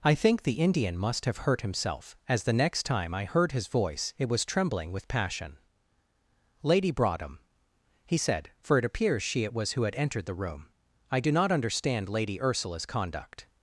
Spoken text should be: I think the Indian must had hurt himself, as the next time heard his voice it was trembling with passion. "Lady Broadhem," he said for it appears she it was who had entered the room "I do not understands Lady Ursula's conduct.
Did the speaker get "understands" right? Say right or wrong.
wrong